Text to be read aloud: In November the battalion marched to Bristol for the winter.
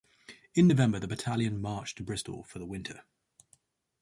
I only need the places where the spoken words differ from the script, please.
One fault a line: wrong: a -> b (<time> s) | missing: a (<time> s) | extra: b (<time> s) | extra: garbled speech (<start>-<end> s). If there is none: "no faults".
no faults